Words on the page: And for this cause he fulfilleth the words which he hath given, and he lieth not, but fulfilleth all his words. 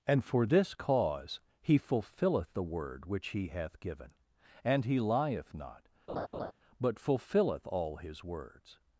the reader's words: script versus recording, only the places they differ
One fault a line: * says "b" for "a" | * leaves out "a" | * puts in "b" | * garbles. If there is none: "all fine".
* says "word" for "words"